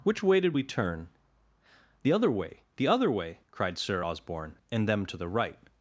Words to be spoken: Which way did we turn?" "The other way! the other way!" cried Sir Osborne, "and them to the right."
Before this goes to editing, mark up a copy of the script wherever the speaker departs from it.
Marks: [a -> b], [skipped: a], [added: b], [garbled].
Which way did we turn?" "The other way! the other way!" cried Sir Osborne, "and them to the right."